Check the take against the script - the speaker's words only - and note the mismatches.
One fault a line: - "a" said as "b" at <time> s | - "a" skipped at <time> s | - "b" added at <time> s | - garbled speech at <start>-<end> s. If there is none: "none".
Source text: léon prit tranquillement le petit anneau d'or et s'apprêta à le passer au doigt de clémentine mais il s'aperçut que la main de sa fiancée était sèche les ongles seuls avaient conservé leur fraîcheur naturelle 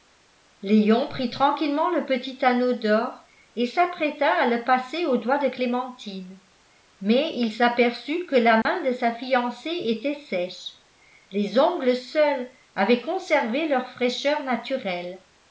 none